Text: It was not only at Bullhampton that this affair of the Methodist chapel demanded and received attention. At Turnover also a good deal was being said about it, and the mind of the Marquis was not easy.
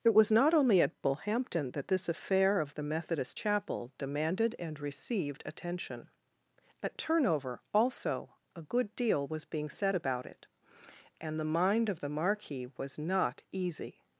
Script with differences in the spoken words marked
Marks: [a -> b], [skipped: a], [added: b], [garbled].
It was not only at Bullhampton that this affair of the Methodist chapel demanded and received attention. At Turnover also a good deal was being said about it, and the mind of the Marquis was not easy.